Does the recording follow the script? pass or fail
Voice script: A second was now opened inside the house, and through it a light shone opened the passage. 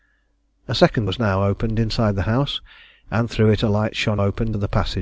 pass